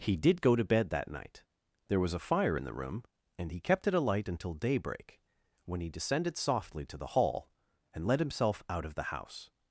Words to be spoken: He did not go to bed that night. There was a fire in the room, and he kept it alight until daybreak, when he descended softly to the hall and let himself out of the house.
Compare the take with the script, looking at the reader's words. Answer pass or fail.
fail